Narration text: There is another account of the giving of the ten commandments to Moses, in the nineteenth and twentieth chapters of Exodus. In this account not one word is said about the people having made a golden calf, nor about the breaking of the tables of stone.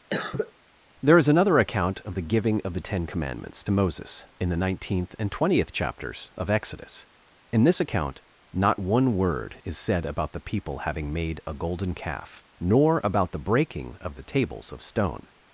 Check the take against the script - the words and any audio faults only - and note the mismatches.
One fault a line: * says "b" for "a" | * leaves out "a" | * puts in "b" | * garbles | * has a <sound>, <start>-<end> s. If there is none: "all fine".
* has a cough, 0.1-0.5 s